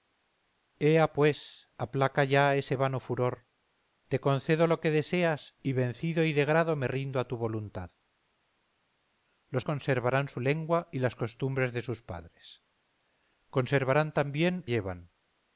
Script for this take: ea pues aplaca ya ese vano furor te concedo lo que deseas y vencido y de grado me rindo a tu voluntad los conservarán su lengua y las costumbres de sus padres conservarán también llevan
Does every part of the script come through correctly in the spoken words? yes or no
yes